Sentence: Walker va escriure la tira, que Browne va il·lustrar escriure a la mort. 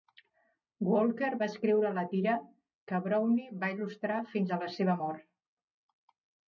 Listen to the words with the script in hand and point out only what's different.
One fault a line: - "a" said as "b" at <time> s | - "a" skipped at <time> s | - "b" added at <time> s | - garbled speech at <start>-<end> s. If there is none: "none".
- "escriure" said as "fins" at 4.3 s
- "seva" added at 4.8 s